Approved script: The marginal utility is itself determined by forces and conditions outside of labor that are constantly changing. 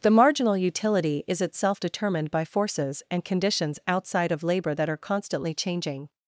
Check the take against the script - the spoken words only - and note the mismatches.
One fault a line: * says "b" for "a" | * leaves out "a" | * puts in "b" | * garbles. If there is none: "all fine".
all fine